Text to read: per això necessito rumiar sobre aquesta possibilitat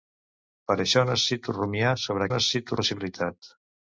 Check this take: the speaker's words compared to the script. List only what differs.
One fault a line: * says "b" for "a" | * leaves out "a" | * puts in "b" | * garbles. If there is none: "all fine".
* says "necessito" for "aquesta"